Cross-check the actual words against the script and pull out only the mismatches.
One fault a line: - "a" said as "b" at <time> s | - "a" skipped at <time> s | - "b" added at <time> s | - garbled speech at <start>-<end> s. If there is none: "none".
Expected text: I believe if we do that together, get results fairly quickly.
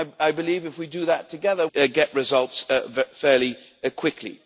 none